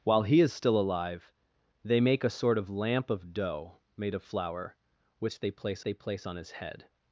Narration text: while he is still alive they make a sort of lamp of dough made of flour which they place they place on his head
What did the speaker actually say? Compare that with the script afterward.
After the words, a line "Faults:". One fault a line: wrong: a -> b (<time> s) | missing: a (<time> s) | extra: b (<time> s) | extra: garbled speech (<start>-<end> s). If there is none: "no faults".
while he is still alive they make a sort of lamp of dough made of flour which they place they place on his head
Faults:
no faults